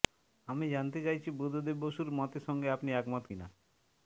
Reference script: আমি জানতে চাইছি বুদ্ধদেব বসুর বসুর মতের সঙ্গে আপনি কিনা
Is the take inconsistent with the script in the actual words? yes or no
yes